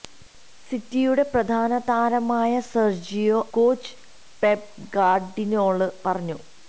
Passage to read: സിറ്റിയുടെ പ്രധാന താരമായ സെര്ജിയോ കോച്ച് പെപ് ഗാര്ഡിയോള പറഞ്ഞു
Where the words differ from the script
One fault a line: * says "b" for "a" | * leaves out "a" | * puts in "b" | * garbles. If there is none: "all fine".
all fine